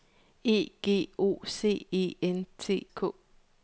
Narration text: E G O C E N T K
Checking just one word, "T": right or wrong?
right